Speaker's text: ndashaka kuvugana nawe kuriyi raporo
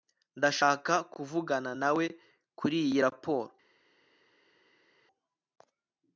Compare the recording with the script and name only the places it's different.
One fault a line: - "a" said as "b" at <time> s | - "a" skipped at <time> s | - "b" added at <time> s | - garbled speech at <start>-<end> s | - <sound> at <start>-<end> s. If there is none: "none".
none